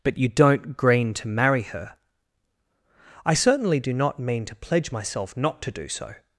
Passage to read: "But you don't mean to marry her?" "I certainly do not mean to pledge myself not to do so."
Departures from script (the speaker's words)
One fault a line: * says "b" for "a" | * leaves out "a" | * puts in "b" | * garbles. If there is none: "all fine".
* says "green" for "mean"